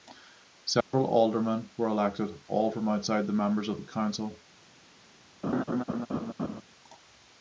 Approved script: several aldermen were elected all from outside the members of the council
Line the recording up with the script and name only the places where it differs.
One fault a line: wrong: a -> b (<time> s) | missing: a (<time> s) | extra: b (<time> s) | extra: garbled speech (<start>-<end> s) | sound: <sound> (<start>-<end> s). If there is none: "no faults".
sound: dropout (0.8-0.9 s)
sound: laugh (5.4-6.6 s)